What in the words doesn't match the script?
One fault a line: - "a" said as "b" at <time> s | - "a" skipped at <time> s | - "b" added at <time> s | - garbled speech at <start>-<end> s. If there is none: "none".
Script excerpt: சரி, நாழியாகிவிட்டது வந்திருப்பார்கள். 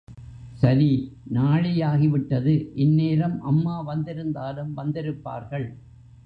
- "இந்நேரம் அம்மா வந்திருந்தாலும்" added at 2.8 s